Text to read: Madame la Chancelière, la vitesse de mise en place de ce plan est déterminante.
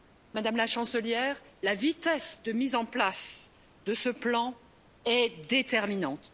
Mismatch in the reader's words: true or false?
false